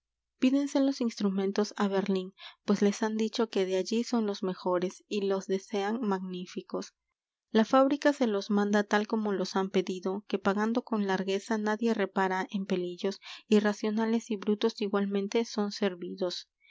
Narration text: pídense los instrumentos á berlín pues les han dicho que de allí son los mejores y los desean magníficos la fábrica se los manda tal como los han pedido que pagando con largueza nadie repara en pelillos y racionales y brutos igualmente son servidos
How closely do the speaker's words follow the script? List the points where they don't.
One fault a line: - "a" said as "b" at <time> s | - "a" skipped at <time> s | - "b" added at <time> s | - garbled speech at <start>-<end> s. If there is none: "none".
none